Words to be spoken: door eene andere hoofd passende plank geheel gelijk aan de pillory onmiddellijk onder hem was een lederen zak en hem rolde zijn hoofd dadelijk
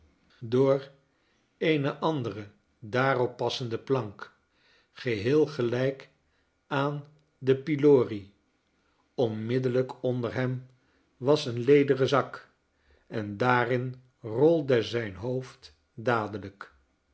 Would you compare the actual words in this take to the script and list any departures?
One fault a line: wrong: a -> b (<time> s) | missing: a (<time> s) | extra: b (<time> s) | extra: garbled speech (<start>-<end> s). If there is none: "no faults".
wrong: hoofd -> daarop (2.8 s)
wrong: hem -> daarin (13.4 s)